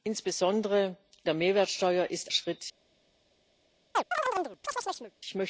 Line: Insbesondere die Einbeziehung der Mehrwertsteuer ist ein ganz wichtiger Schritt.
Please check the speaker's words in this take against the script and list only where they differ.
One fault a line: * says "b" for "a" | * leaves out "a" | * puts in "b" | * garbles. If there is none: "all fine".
* leaves out "die Einbeziehung"
* leaves out "ein ganz wichtiger"